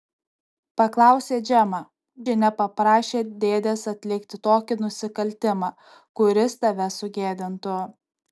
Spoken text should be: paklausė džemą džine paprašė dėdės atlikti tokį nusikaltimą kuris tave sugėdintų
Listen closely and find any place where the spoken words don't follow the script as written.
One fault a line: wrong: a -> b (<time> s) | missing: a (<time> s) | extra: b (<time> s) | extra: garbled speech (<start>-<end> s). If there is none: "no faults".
no faults